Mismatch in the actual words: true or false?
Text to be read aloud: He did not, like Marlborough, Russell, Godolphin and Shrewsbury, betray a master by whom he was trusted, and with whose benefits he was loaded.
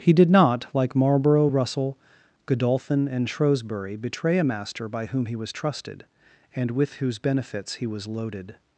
false